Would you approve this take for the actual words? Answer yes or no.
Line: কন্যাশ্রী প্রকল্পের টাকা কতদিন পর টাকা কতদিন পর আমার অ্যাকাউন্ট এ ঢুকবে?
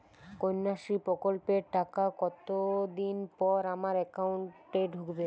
no